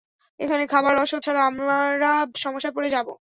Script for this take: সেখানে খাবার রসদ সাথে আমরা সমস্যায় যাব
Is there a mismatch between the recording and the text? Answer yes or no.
yes